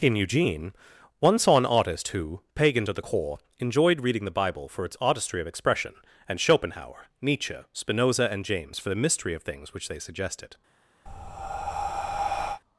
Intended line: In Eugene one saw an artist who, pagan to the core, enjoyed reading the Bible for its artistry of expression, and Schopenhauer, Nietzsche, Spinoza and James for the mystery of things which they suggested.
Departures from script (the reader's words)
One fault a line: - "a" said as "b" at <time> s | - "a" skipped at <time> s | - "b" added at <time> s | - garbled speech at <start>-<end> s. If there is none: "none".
none